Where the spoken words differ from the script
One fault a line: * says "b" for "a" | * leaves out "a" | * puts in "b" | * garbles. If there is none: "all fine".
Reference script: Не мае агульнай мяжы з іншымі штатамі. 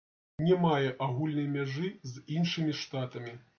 all fine